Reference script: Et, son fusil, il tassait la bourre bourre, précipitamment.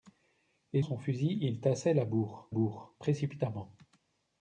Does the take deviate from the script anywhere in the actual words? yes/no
no